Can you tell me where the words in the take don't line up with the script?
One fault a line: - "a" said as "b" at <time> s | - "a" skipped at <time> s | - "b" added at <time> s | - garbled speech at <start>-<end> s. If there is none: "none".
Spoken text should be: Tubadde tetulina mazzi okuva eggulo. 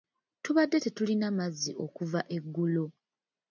none